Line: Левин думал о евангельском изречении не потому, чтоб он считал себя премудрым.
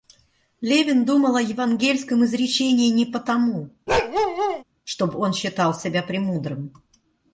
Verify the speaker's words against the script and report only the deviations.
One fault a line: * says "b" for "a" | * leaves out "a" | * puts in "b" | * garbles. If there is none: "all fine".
all fine